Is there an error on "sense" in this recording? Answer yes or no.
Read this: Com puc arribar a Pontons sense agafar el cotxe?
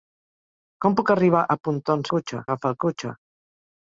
yes